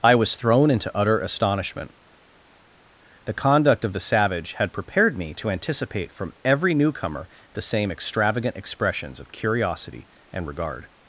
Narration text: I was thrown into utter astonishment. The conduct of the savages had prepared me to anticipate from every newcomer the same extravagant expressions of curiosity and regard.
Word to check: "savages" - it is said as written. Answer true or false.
false